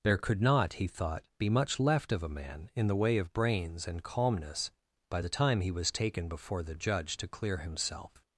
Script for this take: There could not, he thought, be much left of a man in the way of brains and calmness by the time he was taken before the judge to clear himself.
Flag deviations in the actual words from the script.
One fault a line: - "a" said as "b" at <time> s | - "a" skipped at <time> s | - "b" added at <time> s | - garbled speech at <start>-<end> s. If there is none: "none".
none